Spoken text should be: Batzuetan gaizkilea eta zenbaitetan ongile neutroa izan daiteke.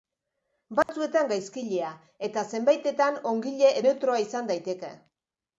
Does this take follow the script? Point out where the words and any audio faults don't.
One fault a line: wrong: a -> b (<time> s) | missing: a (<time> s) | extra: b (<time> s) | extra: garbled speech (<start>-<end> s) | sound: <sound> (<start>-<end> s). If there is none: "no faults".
sound: dropout (0.8-0.9 s)